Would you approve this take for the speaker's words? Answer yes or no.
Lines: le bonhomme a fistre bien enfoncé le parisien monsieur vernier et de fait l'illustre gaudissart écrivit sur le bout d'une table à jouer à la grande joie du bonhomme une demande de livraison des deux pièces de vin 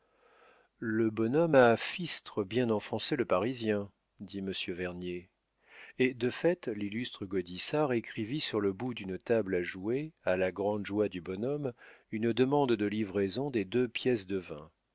no